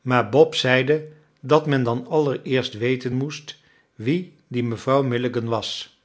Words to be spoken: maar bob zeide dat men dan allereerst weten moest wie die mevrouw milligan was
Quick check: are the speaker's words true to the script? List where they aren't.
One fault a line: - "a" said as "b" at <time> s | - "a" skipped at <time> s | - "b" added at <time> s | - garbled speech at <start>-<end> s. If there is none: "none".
none